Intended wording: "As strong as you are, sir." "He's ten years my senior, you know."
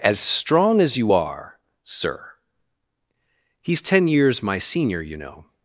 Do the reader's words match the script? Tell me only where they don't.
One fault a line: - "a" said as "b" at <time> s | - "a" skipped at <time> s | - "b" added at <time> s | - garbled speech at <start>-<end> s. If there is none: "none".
none